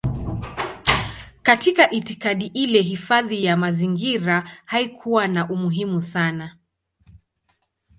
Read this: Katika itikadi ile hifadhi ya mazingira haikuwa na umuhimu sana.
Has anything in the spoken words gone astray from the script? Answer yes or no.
no